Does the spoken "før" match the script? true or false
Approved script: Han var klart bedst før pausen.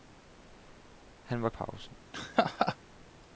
false